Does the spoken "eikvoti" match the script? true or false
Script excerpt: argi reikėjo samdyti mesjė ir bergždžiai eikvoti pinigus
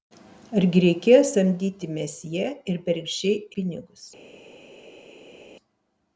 false